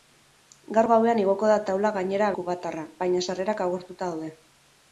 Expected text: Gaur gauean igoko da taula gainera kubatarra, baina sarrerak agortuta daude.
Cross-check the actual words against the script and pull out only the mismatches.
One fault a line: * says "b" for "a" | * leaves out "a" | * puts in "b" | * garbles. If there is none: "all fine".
all fine